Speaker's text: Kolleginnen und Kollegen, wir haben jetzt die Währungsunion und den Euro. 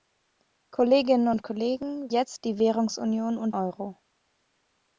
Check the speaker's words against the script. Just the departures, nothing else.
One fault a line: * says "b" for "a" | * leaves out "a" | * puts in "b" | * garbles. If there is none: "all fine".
* leaves out "wir haben"
* leaves out "den"